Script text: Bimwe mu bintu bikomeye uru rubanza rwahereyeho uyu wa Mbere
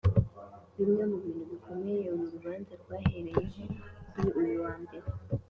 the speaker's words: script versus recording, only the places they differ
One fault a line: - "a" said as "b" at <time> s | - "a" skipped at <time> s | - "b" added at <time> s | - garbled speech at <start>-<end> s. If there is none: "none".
- "kuri" added at 4.1 s